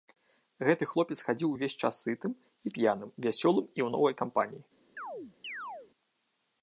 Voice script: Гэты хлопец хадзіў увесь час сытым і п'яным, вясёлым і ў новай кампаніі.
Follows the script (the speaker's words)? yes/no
yes